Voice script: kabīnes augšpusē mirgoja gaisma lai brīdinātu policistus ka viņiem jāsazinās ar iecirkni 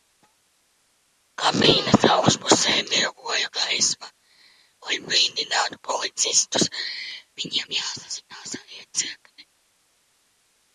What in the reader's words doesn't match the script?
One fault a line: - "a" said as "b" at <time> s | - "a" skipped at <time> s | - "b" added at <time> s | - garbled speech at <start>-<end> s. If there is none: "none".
- "ka" skipped at 6.7 s